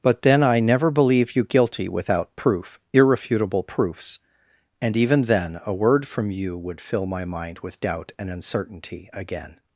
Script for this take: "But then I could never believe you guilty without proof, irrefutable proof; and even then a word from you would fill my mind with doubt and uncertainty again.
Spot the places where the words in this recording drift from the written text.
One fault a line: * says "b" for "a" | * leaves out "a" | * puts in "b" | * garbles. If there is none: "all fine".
* leaves out "could"
* says "proofs" for "proof"